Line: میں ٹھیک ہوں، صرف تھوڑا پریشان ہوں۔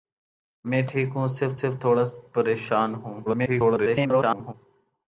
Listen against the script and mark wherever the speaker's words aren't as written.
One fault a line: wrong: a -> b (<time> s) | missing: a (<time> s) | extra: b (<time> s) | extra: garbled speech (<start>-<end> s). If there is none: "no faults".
extra: صرف (1.6 s)
extra: garbled speech (3.3-4.5 s)